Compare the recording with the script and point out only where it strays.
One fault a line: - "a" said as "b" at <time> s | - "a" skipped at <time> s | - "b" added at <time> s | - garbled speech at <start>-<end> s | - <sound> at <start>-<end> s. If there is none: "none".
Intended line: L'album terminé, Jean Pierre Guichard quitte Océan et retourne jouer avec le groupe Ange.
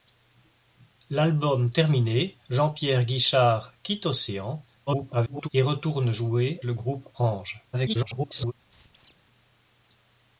- garbled speech at 4.9-5.5 s
- "avec" skipped at 6.6 s
- garbled speech at 7.7-8.5 s
- squeak at 8.7-9.2 s